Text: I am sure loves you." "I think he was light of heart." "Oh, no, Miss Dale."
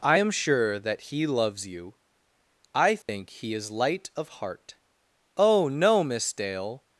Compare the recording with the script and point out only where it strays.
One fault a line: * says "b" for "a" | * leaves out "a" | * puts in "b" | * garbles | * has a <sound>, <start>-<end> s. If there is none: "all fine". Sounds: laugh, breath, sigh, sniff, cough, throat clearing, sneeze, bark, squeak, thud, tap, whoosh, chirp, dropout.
* puts in "that he"
* has a dropout, 3.0-3.1 s
* says "is" for "was"